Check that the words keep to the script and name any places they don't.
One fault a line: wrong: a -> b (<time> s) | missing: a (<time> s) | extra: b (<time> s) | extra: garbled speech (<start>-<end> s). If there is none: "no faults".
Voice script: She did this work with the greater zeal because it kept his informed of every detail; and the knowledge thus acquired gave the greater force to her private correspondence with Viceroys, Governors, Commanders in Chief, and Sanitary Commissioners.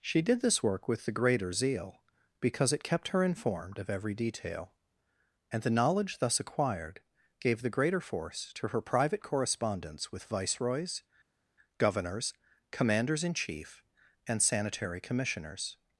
wrong: his -> her (3.1 s)